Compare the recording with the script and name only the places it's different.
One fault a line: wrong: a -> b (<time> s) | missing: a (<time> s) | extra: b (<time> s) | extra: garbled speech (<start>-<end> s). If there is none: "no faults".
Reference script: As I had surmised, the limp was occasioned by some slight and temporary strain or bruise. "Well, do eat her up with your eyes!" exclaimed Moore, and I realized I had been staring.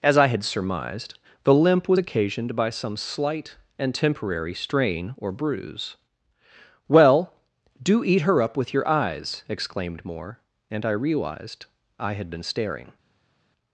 no faults